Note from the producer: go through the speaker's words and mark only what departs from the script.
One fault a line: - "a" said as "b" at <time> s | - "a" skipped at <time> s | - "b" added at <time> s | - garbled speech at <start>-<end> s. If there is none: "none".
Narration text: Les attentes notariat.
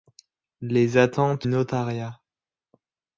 none